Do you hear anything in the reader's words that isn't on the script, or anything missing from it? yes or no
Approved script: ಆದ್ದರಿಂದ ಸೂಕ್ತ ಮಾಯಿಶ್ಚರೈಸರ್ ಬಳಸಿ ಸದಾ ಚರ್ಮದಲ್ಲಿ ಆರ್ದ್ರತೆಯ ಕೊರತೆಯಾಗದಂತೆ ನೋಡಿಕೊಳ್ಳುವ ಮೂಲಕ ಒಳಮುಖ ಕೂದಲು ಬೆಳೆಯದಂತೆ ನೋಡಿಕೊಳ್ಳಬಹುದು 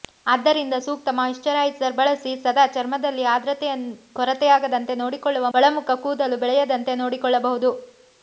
yes